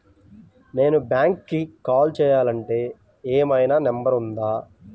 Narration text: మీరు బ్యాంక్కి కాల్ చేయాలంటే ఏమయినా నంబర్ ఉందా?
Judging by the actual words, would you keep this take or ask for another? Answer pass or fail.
fail